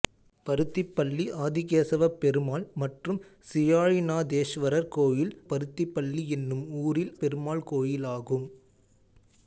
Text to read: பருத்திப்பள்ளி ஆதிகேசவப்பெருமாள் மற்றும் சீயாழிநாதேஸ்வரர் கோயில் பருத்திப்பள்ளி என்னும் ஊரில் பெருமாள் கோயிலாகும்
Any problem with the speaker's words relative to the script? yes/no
no